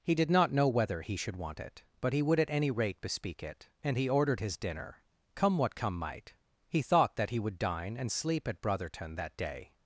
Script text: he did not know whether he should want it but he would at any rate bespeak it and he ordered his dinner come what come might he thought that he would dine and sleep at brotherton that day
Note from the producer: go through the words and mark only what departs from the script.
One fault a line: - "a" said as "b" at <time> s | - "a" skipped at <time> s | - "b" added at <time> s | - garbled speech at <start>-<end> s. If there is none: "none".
none